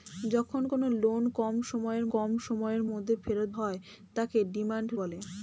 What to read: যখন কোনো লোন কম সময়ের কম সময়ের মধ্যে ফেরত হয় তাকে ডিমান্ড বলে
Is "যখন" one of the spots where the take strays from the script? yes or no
no